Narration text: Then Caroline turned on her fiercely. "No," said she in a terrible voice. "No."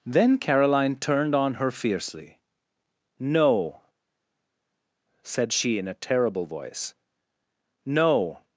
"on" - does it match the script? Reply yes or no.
yes